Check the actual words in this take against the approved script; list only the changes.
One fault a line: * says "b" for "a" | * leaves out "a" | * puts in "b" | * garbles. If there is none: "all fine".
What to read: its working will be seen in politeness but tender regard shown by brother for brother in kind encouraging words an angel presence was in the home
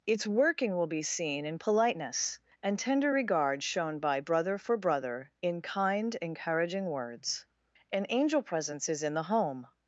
* says "and" for "but"
* says "is" for "was"